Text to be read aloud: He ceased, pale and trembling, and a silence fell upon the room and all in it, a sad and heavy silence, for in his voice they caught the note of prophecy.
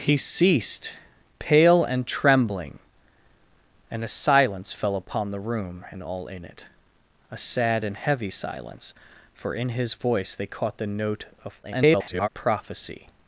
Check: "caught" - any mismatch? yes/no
no